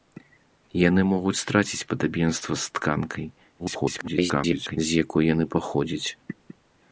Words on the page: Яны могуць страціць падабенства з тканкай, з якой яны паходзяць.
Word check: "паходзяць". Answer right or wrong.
right